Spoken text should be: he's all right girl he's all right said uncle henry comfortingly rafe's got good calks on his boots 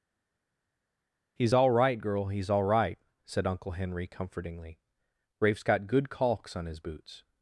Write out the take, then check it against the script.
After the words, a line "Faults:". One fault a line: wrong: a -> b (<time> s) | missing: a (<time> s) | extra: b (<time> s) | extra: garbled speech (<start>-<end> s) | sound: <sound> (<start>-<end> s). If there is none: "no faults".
he's all right girl he's all right said uncle henry comfortingly rafe's got good calks on his boots
Faults:
no faults